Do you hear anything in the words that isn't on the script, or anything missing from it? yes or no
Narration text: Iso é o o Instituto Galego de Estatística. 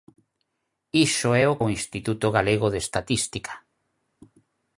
no